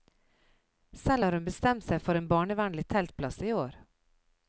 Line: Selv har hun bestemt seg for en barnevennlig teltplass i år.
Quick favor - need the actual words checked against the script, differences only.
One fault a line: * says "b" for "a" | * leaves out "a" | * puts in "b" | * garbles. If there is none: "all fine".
all fine